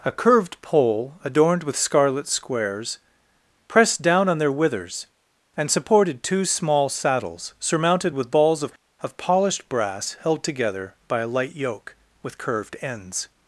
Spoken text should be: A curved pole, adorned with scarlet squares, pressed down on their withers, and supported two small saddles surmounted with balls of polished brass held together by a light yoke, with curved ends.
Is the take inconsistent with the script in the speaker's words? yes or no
yes